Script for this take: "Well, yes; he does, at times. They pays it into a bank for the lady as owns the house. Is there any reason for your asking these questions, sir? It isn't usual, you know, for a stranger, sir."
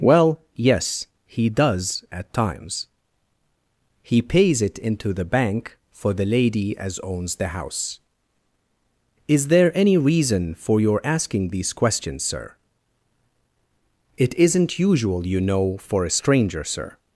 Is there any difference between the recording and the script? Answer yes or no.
yes